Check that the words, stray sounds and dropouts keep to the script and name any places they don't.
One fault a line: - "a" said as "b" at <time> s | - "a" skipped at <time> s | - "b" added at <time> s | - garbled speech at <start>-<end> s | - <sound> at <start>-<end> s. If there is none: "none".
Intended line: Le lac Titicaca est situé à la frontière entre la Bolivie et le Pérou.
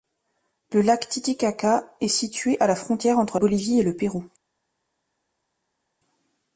- "la" skipped at 3.4 s